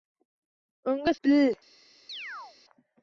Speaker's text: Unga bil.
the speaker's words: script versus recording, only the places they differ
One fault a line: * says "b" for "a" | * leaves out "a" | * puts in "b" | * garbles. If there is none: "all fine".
all fine